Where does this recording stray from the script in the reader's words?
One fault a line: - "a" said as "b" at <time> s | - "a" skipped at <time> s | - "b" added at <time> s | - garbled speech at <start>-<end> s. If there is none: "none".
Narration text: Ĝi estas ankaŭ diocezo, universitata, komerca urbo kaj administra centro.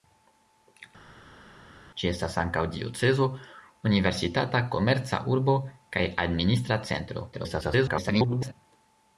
- garbled speech at 7.3-8.5 s